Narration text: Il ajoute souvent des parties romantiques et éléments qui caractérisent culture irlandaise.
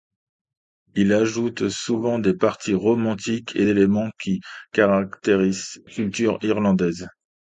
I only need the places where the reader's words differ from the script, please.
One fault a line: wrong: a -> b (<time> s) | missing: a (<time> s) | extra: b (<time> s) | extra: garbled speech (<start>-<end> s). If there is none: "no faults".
no faults